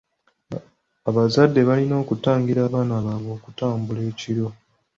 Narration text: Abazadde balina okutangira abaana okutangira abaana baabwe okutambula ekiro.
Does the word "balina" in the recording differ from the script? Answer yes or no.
no